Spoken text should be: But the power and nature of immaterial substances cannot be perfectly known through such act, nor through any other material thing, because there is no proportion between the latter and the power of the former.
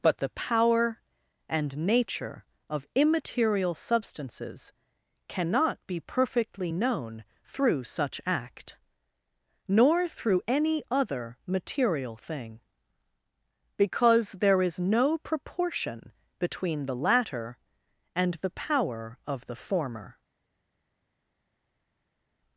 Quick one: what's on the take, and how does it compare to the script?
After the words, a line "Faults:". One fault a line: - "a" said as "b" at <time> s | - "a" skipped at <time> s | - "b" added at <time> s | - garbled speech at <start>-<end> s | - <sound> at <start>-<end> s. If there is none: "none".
But the power and nature of immaterial substances cannot be perfectly known through such act, nor through any other material thing, because there is no proportion between the latter and the power of the former.
Faults:
none